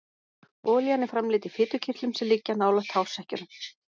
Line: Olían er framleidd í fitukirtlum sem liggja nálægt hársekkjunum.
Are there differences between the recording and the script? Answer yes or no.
no